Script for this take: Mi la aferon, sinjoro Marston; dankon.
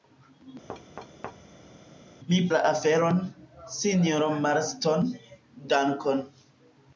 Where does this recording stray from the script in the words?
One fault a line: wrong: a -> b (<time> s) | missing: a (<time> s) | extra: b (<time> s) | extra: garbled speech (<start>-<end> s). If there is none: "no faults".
no faults